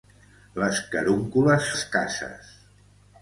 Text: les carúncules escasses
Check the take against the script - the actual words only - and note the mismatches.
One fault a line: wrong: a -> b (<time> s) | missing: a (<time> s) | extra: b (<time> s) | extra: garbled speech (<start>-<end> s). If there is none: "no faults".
no faults